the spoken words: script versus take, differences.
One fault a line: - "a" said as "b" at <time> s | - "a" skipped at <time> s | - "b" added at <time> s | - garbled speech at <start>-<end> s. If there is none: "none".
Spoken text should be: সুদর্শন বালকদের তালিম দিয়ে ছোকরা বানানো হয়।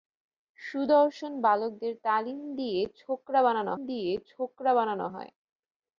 - "দিয়ে ছোকরা বানানো" added at 3.9 s